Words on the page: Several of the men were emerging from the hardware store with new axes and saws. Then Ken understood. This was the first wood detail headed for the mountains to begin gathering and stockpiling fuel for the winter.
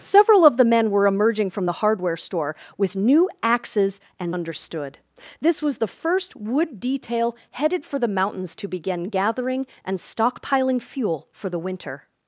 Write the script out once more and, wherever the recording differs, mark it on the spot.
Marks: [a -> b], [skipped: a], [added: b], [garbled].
Several of the men were emerging from the hardware store with new axes and [skipped: saws. Then Ken] understood. This was the first wood detail headed for the mountains to begin gathering and stockpiling fuel for the winter.